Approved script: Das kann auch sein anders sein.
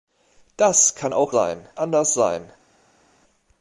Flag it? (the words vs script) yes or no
no